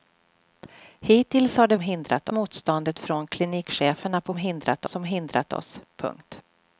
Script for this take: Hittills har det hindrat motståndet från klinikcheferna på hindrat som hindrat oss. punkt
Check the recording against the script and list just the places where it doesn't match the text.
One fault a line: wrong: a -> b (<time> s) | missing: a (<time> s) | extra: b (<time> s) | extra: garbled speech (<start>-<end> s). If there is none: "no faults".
no faults